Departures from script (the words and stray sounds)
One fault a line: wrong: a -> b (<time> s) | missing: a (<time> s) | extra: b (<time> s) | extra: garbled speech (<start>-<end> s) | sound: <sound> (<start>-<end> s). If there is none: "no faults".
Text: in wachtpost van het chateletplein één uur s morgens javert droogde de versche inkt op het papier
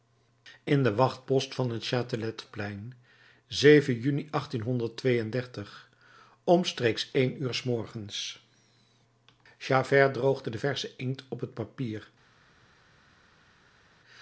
extra: den (0.8 s)
extra: juni omstreeks (4.0 s)